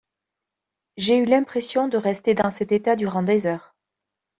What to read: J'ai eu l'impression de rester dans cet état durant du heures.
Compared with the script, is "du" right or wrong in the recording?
wrong